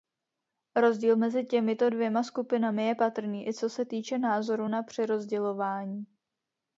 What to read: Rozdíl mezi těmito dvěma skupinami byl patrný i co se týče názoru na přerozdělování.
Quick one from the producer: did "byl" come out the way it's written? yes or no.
no